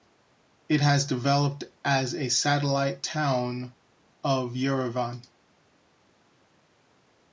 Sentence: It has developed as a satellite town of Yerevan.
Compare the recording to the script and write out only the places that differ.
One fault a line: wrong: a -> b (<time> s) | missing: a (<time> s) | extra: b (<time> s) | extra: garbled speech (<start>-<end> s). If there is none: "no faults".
no faults